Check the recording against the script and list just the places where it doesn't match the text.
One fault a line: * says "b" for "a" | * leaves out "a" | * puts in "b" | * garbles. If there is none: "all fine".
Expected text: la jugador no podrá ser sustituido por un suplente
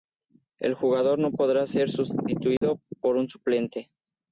* says "el" for "la"